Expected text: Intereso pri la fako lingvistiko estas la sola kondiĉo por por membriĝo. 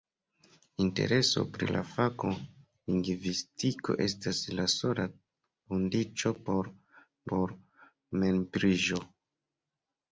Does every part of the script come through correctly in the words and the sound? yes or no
yes